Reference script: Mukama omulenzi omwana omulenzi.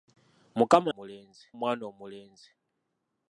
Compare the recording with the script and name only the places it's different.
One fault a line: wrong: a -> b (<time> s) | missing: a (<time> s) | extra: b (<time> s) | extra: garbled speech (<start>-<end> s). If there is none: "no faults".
no faults